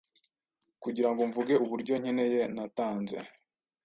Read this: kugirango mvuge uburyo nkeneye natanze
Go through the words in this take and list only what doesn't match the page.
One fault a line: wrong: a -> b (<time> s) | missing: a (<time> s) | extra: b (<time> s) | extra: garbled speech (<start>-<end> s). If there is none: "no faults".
no faults